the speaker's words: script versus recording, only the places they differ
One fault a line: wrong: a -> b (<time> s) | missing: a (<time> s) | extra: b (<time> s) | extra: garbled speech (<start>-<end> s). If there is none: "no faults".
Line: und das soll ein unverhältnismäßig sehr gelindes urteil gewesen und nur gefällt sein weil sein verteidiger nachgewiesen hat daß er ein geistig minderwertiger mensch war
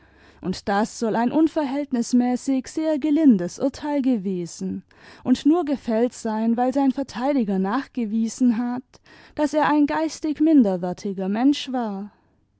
no faults